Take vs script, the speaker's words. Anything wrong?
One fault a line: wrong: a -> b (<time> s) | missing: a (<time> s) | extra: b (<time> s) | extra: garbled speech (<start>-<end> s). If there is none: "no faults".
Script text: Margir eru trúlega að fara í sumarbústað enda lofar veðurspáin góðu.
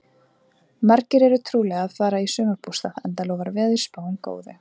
no faults